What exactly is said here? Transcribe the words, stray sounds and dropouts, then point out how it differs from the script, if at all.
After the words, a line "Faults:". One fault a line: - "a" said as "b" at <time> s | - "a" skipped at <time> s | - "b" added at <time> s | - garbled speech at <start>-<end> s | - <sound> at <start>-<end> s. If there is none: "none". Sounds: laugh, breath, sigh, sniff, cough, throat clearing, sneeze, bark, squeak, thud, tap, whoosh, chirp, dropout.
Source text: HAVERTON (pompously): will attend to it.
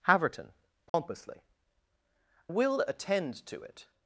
HAVERTON (pompously): will attend to it.
Faults:
- dropout at 0.9-0.9 s